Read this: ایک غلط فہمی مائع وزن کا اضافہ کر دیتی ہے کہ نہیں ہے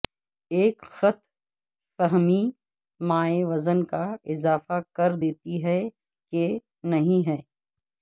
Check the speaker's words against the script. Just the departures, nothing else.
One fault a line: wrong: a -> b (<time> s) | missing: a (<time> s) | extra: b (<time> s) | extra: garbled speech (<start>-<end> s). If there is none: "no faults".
no faults